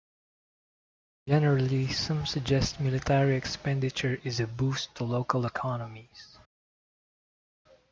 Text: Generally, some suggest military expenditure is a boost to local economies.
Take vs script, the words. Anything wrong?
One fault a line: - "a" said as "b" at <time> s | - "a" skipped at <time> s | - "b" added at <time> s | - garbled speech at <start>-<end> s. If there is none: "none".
none